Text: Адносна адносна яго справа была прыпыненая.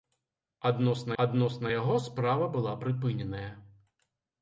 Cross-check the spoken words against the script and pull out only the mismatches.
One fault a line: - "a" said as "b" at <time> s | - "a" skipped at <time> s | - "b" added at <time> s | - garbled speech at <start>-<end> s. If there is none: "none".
none